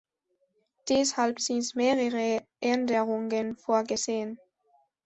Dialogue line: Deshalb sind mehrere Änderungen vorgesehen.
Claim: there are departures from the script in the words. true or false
false